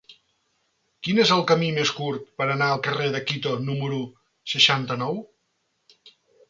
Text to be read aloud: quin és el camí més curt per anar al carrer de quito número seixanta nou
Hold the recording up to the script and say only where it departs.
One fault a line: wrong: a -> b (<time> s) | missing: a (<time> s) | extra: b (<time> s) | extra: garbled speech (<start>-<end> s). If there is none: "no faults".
no faults